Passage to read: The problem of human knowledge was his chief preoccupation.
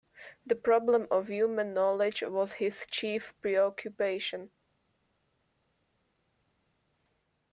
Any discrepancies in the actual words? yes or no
no